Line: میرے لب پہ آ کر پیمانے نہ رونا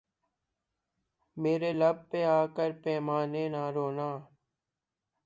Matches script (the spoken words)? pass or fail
pass